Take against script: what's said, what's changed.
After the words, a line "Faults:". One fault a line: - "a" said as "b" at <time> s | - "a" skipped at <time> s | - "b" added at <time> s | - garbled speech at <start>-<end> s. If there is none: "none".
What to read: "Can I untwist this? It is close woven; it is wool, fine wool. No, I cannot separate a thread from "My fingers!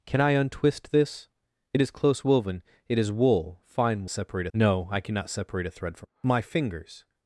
"Can I untwist this? It is close woven; it is wool, fine separate. No, I cannot separate a thread from "My fingers!
Faults:
- "wool" said as "separate" at 4.1 s